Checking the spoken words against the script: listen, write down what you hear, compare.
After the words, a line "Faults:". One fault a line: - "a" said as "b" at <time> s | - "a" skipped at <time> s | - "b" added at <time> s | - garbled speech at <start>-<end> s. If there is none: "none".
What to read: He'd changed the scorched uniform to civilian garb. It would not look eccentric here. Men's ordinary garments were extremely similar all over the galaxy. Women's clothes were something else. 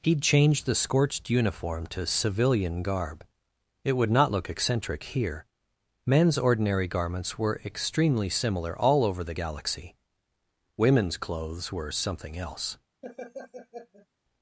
He'd changed the scorched uniform to civilian garb. It would not look eccentric here. Men's ordinary garments were extremely similar all over the galaxy. Women's clothes were something else.
Faults:
none